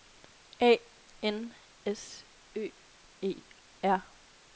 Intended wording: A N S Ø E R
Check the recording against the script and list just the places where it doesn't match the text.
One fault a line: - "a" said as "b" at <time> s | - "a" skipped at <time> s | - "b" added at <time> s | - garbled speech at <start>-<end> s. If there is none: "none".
none